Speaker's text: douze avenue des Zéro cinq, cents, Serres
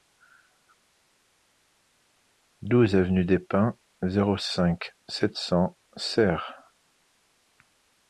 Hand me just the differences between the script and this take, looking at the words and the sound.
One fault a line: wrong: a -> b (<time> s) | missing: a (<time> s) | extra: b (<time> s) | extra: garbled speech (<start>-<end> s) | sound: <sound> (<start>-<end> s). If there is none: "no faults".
extra: Pins (3.4 s)
extra: sept (5.1 s)